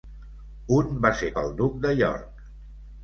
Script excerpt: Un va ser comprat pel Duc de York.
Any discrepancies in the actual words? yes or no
yes